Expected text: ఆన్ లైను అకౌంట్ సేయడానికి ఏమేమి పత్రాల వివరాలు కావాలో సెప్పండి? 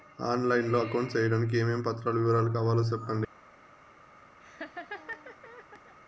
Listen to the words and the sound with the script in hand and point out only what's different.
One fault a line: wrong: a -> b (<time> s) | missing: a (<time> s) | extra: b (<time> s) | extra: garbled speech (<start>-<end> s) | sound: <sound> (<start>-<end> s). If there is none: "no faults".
extra: లో (0.7 s)
sound: laugh (4.4-6.0 s)